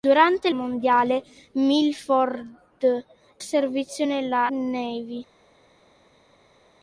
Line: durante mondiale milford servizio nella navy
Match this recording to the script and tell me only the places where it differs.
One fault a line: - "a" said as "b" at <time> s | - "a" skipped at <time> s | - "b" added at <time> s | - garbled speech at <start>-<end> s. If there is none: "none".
none